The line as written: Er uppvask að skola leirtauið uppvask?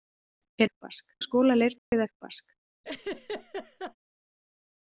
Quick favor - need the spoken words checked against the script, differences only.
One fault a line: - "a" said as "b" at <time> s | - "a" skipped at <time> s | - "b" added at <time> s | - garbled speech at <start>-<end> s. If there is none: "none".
none